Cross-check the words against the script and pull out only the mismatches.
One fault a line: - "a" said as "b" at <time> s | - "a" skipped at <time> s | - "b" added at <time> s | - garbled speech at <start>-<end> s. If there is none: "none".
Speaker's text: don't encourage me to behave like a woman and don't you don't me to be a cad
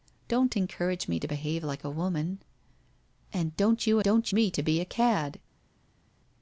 none